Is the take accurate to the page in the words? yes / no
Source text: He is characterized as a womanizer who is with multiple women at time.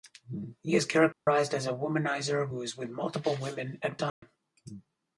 yes